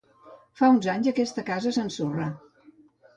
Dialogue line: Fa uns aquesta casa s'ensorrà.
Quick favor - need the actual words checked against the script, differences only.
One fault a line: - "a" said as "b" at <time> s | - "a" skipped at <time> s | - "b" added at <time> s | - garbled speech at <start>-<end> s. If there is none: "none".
- "anys" added at 0.9 s